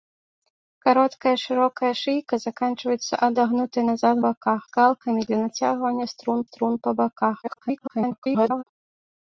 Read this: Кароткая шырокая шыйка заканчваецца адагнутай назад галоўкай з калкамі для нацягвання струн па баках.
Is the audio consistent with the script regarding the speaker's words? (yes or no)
no